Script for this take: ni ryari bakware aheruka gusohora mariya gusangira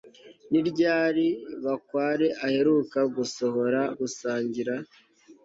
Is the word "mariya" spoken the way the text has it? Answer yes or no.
no